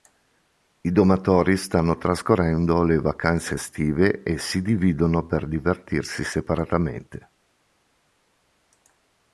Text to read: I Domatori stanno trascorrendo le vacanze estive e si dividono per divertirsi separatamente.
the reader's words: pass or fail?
pass